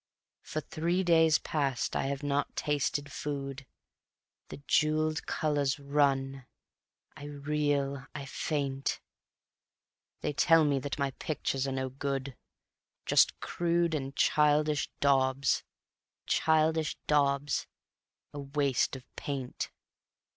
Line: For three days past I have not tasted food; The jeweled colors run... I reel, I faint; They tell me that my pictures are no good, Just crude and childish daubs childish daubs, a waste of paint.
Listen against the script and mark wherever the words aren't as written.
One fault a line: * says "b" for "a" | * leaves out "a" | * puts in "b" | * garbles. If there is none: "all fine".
all fine